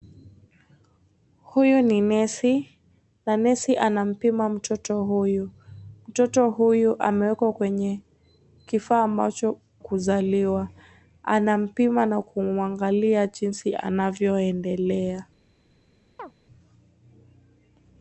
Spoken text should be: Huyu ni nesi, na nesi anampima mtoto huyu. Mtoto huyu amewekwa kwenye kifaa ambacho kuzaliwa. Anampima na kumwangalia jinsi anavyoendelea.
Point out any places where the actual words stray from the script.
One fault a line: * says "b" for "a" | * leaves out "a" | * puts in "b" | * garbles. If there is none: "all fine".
all fine